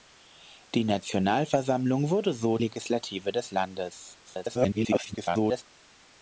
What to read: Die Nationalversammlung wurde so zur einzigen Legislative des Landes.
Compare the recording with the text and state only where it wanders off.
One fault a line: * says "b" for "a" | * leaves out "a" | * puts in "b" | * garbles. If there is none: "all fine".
* leaves out "zur einzigen"
* garbles